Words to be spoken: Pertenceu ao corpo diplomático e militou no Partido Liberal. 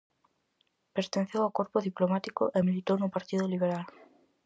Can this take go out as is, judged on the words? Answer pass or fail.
pass